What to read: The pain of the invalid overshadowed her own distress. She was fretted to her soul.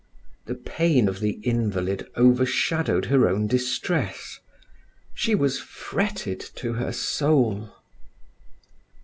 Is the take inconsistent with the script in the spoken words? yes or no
no